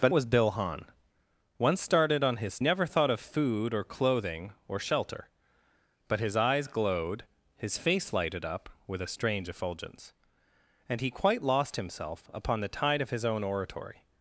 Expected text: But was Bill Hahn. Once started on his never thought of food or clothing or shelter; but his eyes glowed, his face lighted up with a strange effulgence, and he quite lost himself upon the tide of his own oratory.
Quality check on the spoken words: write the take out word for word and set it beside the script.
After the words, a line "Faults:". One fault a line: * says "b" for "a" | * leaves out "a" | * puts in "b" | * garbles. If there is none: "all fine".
But was Bill Hahn. Once started on his never thought of food or clothing or shelter; but his eyes glowed, his face lighted up with a strange effulgence, and he quite lost himself upon the tide of his own oratory.
Faults:
all fine